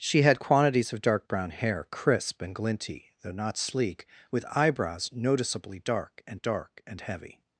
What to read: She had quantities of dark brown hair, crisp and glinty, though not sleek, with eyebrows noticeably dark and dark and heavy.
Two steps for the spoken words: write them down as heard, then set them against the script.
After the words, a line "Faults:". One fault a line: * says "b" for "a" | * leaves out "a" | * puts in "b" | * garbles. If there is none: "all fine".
She had quantities of dark brown hair, crisp and glinty, though not sleek, with eyebrows noticeably dark and dark and heavy.
Faults:
all fine